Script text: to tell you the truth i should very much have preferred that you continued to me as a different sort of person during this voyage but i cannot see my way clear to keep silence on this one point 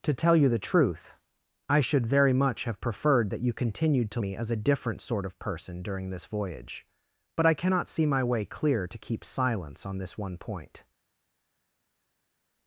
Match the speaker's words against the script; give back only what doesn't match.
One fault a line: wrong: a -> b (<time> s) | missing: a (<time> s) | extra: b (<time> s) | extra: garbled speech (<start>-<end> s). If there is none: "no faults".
no faults